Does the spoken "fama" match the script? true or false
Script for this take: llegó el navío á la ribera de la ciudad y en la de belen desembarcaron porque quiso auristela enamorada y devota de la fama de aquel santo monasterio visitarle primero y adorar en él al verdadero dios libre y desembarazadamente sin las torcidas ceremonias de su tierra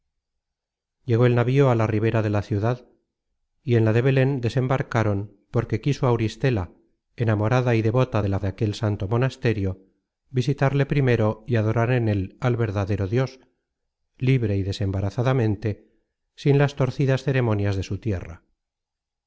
false